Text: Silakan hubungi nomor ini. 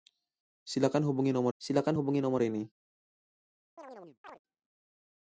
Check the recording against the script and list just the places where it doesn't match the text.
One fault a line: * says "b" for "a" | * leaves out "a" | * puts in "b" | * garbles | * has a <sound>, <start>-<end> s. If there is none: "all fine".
* puts in "silakan hubungi nomor"
* has a chirp, 3.8-4.4 s